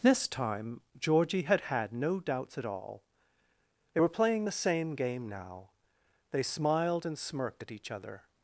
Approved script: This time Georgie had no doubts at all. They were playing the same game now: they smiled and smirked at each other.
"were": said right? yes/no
yes